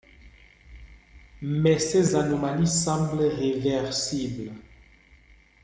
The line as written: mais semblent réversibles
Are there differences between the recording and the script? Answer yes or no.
yes